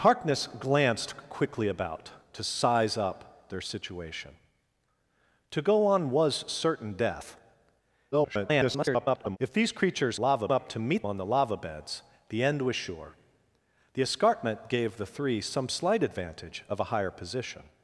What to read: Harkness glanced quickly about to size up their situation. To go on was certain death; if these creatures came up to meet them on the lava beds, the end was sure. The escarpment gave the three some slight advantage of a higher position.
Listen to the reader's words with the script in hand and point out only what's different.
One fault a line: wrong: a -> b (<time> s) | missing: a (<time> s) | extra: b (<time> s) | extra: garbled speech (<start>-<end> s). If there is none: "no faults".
extra: garbled speech (8.1-9.4 s)
wrong: came -> lava (10.2 s)
missing: them (11.1 s)